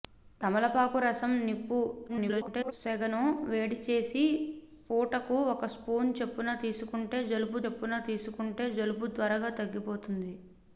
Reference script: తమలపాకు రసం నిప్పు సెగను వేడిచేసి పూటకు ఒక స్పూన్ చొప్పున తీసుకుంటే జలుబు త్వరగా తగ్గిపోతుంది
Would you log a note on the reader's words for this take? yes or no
yes